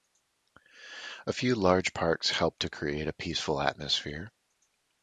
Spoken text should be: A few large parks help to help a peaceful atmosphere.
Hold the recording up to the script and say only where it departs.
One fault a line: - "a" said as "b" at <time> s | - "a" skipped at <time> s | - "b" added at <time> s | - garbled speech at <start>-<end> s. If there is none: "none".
- "help" said as "create" at 2.7 s